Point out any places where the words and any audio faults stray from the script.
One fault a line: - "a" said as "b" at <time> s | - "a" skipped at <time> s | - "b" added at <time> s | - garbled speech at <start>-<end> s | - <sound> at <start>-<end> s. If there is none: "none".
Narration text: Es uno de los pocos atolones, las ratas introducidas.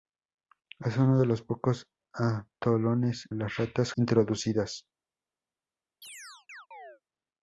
- chirp at 6.0-7.0 s